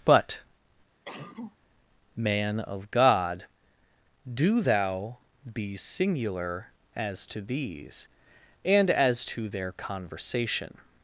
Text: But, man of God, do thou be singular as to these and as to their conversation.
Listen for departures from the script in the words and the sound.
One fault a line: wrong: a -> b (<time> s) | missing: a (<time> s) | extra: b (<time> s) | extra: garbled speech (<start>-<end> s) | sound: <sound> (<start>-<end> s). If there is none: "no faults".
sound: cough (1.1-1.6 s)